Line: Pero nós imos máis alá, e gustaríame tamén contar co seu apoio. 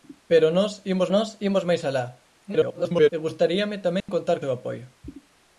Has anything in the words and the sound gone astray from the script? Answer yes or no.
yes